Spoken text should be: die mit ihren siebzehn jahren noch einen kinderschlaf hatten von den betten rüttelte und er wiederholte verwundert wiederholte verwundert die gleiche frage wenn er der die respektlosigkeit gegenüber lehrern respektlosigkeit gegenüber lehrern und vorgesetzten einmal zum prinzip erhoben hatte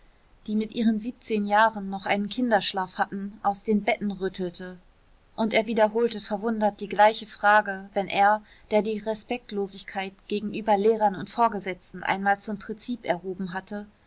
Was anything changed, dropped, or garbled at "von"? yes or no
yes